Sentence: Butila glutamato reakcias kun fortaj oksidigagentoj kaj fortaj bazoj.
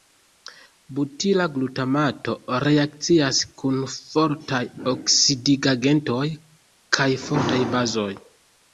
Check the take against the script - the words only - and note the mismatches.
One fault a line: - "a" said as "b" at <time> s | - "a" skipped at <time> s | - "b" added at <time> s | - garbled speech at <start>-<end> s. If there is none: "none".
none